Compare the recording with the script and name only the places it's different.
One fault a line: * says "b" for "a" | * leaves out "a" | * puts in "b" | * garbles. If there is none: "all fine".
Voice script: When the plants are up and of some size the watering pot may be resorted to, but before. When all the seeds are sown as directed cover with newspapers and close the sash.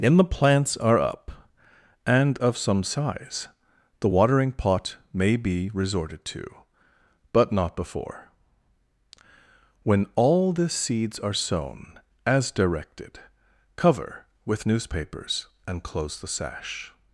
* puts in "not"